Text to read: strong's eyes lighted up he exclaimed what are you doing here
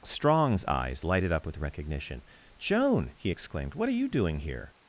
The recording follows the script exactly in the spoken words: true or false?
false